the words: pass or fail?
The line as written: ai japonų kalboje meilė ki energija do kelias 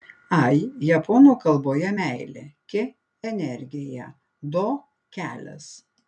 pass